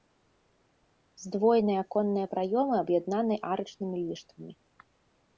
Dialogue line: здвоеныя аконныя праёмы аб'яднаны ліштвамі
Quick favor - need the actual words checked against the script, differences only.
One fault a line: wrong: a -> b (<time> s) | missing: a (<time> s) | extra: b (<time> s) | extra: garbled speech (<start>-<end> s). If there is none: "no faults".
extra: арачнымі (3.5 s)